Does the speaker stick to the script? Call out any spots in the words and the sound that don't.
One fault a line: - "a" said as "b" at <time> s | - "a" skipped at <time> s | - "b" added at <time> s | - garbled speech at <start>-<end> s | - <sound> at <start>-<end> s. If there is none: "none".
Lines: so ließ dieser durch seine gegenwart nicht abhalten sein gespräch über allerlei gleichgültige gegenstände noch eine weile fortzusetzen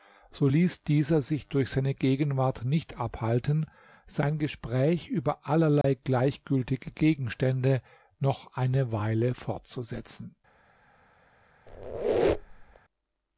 - "sich" added at 1.2 s
- dropout at 5.8-5.8 s
- squeak at 11.7-12.8 s